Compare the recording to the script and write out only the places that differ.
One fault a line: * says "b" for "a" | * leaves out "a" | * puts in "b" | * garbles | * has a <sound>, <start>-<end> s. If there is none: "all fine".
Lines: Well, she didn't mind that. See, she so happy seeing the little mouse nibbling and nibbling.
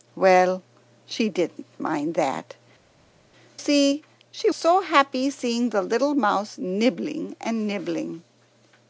all fine